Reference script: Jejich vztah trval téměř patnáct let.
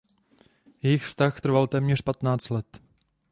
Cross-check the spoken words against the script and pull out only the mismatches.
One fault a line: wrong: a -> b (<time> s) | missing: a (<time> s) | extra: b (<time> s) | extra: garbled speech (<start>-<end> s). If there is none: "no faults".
no faults